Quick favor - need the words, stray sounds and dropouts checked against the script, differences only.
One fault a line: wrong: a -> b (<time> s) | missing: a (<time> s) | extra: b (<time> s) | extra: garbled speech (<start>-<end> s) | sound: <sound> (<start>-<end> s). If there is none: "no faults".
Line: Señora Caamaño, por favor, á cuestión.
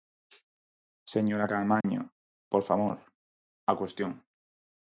sound: dropout (1.8-1.8 s)